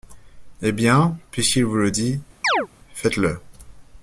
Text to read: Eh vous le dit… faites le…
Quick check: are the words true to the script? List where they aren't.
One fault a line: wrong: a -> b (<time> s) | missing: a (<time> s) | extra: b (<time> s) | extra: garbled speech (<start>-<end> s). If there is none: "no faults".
extra: bien puisqu'il (0.7 s)